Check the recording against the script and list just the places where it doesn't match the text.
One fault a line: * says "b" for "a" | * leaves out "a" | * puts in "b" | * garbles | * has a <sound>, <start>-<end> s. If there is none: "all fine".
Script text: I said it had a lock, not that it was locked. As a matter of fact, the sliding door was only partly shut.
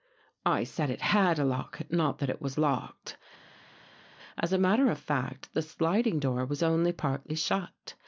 all fine